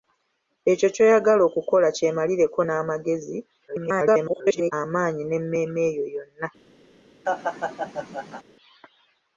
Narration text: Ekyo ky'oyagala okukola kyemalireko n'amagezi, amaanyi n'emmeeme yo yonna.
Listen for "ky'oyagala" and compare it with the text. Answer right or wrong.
right